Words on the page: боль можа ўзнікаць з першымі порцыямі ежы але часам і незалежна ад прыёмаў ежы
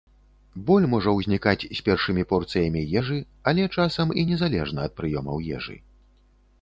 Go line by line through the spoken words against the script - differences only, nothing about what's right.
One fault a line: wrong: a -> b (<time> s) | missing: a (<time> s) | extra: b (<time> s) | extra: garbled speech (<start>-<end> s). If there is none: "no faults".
no faults